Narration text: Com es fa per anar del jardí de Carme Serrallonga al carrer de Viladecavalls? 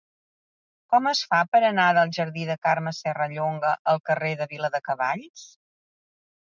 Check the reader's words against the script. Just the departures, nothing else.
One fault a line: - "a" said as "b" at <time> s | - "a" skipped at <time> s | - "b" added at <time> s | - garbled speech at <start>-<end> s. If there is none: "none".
none